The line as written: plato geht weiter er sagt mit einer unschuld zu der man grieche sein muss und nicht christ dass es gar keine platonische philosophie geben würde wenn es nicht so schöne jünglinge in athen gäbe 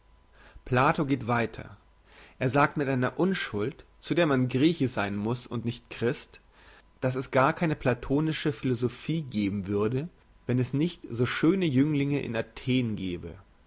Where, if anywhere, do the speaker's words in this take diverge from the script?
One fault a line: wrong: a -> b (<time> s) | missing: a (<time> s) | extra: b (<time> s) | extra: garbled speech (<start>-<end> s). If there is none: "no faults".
no faults